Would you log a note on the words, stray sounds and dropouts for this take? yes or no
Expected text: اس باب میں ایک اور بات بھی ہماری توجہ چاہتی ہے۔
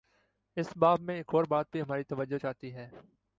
no